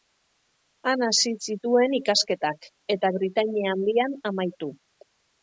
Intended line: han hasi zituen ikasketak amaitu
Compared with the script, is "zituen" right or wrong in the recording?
right